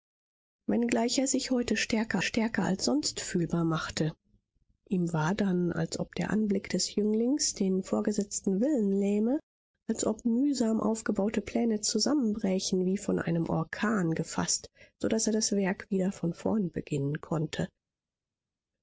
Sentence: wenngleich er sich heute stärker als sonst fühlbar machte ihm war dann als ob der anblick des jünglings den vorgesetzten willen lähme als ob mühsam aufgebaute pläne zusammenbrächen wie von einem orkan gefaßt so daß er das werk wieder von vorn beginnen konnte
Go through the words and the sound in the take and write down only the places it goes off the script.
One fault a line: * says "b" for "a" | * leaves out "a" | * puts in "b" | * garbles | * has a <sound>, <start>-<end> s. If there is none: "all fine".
* puts in "stärker"